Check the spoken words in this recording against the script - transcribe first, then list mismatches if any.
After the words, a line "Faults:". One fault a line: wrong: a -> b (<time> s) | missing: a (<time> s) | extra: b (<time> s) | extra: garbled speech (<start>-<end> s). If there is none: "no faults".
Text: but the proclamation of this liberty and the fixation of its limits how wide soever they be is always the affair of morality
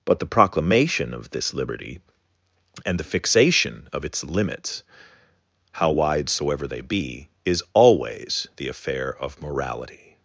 but the proclamation of this liberty and the fixation of its limits how wide soever they be is always the affair of morality
Faults:
no faults